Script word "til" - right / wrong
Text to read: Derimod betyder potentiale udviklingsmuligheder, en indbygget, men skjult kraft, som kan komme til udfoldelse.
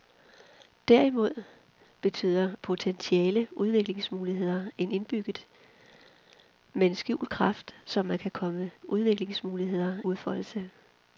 wrong